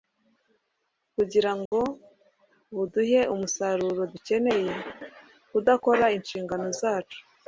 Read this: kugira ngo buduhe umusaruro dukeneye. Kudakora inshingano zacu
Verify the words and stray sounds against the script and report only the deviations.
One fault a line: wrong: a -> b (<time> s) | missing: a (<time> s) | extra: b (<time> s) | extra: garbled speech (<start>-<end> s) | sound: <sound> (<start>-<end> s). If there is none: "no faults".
sound: dropout (1.7-1.7 s)